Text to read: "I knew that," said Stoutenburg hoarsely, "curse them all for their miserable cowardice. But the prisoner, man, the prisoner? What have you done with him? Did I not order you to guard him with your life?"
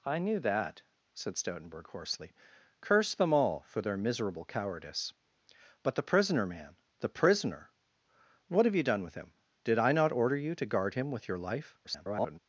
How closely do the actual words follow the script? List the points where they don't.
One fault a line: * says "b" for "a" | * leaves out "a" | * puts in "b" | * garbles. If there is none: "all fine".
* garbles